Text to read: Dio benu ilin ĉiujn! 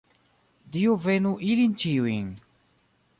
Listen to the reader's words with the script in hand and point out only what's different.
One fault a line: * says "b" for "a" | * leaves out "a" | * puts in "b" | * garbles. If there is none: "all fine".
all fine